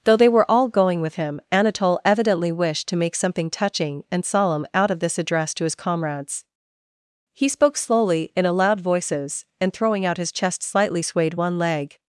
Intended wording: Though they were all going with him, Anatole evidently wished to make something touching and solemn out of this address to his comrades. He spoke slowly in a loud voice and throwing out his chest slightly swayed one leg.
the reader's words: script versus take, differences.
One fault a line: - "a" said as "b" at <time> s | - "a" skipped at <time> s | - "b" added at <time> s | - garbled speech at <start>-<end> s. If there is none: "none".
- "voice" said as "voices" at 8.8 s